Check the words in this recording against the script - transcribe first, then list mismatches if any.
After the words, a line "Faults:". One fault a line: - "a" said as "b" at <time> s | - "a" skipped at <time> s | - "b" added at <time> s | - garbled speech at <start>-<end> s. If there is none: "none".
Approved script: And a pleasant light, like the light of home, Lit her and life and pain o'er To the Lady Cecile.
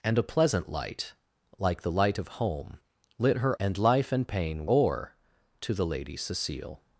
And a pleasant light, like the light of home, Lit her and life and pain o'er To the Lady Cecile.
Faults:
none